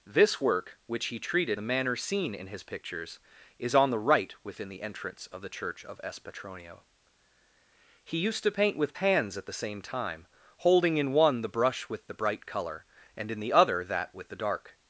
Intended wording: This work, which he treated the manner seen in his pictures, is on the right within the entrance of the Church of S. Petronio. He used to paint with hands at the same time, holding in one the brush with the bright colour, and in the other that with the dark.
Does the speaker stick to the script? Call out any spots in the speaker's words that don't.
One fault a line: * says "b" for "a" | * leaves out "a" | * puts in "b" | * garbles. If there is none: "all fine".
all fine